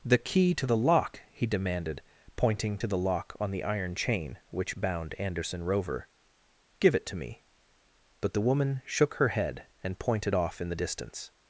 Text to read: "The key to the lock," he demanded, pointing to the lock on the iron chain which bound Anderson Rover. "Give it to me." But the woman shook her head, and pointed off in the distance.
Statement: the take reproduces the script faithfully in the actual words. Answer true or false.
true